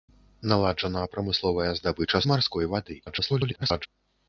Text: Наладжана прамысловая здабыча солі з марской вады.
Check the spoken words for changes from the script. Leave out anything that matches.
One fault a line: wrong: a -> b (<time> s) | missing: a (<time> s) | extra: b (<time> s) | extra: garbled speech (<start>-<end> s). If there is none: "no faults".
missing: солі (2.2 s)
extra: garbled speech (3.1-3.9 s)